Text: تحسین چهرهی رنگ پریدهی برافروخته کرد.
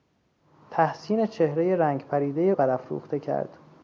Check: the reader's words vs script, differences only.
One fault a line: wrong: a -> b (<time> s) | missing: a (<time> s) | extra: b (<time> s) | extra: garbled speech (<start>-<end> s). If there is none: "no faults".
no faults